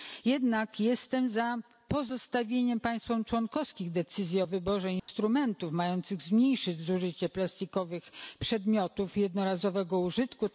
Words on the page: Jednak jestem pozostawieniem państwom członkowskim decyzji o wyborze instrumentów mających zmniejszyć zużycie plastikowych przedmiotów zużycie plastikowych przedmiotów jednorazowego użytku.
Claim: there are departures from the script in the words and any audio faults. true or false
true